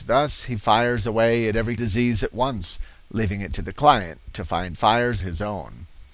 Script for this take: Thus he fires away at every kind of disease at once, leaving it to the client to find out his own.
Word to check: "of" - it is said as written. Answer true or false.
false